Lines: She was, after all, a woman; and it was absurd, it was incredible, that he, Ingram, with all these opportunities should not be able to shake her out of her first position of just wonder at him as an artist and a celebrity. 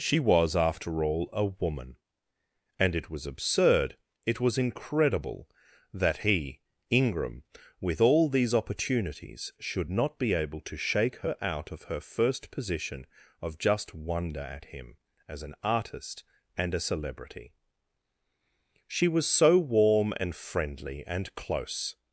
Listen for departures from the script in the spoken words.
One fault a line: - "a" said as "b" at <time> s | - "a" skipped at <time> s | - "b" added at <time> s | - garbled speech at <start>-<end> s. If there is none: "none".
- "She was so warm and friendly and close" added at 18.9 s